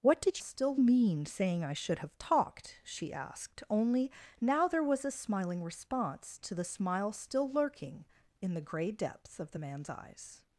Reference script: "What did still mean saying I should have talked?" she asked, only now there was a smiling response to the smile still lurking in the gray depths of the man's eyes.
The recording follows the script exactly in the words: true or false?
true